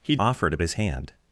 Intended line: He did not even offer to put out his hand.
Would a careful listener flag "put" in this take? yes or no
yes